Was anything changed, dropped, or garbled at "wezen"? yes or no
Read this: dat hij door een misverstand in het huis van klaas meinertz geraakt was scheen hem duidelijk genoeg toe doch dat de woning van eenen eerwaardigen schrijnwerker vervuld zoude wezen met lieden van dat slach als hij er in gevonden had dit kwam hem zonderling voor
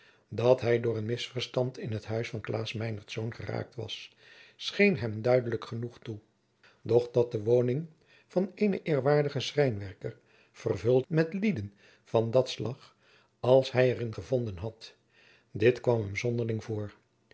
yes